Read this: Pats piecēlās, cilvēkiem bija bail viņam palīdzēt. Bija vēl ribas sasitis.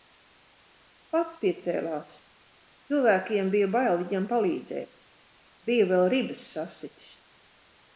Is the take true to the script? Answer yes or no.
yes